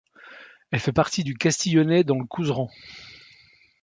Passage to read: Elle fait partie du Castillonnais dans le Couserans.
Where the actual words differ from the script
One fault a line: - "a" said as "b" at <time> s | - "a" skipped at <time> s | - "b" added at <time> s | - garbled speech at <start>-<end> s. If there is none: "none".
none